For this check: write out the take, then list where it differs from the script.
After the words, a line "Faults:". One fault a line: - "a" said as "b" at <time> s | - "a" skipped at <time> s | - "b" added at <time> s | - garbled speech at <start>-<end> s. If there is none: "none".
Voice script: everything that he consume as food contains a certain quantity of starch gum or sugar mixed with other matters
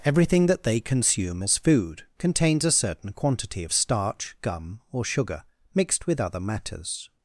everything that they consume as food contains a certain quantity of starch gum or sugar mixed with other matters
Faults:
- "he" said as "they" at 0.6 s